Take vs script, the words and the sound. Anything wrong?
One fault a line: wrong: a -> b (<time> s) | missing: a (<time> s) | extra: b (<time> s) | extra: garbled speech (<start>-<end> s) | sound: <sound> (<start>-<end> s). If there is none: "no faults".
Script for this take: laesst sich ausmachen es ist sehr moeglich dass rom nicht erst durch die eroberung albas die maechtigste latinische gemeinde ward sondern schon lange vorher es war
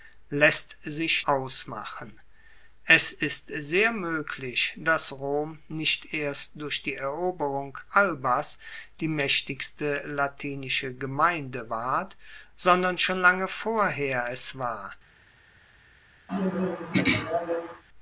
sound: throat clearing (16.3-17.8 s)